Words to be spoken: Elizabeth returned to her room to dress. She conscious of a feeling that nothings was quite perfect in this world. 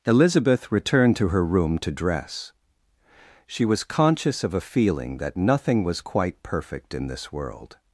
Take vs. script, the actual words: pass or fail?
fail